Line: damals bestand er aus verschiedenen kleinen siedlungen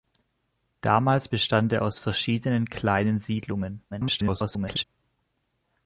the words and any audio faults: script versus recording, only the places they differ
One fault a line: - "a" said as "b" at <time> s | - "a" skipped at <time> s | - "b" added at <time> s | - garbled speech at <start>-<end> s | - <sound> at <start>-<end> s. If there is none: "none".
- garbled speech at 3.9-4.8 s